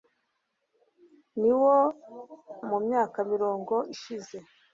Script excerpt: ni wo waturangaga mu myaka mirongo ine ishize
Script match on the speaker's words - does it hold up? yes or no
no